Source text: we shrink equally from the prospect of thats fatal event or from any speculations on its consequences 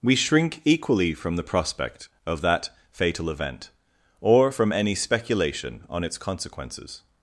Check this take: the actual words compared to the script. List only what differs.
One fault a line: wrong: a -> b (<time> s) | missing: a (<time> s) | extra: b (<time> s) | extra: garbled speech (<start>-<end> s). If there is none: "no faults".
wrong: thats -> that (2.4 s)
wrong: speculations -> speculation (4.9 s)